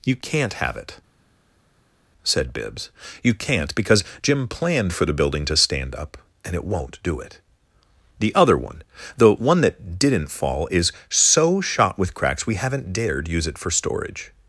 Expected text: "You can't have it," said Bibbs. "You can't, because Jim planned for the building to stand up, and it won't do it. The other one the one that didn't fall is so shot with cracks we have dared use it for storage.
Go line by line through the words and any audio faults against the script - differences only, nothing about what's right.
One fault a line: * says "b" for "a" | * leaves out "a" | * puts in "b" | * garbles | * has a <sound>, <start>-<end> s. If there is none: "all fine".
* says "haven't" for "have"